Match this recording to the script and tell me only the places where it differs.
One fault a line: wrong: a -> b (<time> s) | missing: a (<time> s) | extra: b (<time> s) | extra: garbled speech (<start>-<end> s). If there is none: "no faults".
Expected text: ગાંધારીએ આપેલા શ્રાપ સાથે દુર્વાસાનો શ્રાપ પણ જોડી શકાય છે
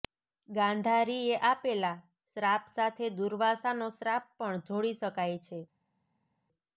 no faults